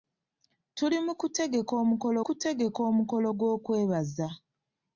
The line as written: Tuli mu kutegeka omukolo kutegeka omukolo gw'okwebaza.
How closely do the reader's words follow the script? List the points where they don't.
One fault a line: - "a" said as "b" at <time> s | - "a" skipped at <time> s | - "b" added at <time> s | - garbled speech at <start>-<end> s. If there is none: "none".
none